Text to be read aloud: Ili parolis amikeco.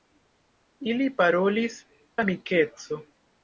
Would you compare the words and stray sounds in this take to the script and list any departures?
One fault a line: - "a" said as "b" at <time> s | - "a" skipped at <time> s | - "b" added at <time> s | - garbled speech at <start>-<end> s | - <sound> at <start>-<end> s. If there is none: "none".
none